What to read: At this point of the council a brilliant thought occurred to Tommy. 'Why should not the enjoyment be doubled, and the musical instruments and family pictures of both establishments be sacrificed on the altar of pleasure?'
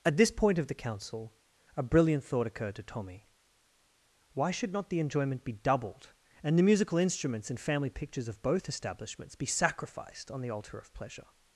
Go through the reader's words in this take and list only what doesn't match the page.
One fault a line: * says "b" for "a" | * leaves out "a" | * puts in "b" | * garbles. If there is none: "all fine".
all fine